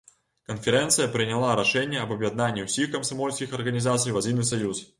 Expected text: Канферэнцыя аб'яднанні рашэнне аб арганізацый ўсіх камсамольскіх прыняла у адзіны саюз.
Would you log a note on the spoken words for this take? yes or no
yes